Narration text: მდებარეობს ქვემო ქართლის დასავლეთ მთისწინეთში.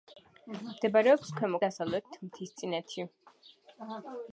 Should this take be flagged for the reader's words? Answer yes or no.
yes